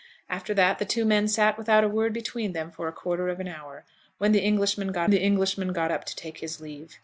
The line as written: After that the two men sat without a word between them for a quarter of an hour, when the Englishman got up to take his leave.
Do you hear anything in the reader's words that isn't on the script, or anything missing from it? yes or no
yes